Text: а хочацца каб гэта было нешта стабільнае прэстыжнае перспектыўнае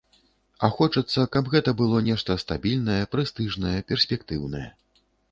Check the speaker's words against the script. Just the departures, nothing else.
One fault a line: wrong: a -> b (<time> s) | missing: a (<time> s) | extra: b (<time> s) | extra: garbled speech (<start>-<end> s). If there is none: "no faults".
no faults